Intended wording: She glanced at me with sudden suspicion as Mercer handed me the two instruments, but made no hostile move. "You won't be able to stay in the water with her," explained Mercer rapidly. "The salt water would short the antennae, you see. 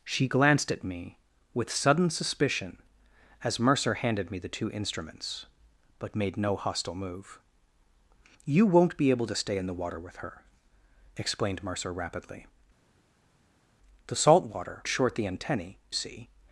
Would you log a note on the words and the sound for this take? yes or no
yes